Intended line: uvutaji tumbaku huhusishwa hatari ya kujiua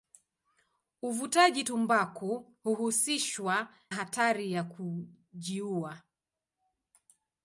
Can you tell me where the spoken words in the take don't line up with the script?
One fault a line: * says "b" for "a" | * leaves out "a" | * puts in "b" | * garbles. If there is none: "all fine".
all fine